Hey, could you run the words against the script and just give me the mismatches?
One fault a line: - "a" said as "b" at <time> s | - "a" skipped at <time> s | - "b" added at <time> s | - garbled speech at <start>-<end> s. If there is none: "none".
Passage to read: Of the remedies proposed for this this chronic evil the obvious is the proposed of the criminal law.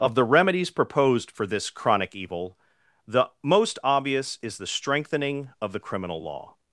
- "this" skipped at 1.7 s
- "most" added at 3.4 s
- "proposed" said as "strengthening" at 4.7 s